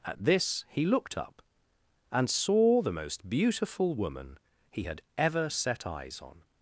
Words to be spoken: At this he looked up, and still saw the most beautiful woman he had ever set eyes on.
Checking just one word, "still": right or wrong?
wrong